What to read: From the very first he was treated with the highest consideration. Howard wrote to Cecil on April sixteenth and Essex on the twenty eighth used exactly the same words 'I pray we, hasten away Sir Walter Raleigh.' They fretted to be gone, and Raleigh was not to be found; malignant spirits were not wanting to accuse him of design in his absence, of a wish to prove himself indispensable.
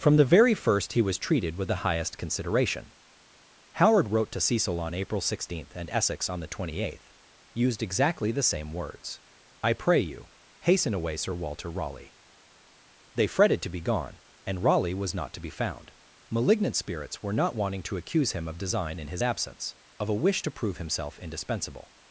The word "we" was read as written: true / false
false